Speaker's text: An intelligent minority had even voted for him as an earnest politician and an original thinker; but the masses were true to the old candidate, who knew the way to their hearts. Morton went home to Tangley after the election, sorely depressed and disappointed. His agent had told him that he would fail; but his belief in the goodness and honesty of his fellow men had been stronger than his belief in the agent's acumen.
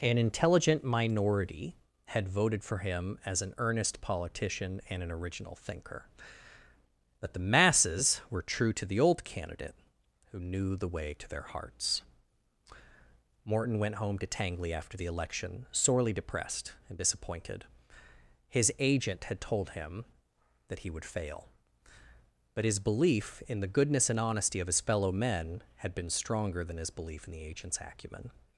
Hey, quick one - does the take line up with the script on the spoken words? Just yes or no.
no